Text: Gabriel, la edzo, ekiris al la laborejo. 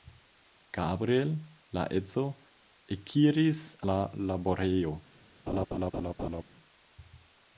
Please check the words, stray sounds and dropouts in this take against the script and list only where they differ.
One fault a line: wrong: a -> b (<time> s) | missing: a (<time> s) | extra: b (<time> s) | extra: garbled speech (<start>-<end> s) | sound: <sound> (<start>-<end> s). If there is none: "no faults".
missing: al (3.6 s)
sound: laugh (5.5-6.4 s)